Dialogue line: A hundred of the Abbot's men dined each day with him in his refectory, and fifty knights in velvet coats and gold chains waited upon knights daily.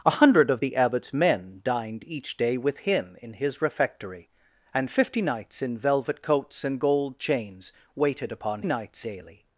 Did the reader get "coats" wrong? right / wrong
right